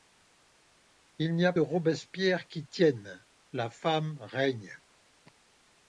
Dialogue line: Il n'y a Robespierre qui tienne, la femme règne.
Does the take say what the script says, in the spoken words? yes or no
yes